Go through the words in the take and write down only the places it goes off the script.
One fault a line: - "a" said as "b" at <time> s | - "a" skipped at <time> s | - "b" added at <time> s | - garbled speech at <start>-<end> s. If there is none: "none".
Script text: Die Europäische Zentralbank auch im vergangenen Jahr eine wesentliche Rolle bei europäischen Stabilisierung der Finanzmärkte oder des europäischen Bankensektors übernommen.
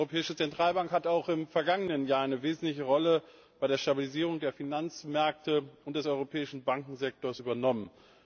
- "hat" added at 0.9 s
- "europäischen" said as "der" at 3.7 s
- "oder" said as "und" at 5.8 s